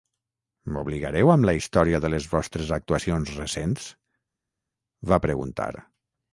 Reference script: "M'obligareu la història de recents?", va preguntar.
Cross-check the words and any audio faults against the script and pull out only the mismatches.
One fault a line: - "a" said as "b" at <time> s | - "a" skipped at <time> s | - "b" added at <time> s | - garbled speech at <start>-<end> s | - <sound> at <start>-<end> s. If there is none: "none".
- "amb" added at 1.3 s
- "les vostres actuacions" added at 2.1 s